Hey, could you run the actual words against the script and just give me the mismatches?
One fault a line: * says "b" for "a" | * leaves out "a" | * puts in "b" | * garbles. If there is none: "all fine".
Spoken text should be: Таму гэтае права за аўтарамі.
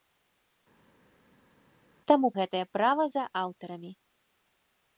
all fine